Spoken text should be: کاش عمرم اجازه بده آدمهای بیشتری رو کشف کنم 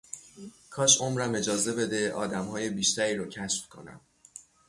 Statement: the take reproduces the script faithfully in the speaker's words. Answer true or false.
true